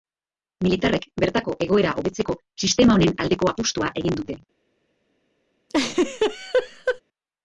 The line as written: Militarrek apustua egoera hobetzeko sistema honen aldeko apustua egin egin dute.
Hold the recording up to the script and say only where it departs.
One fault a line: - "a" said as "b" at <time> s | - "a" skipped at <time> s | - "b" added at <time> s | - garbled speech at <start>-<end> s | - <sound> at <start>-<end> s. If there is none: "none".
- "apustua" said as "bertako" at 1.2 s
- "egin" skipped at 4.2 s
- laugh at 5.7-7.0 s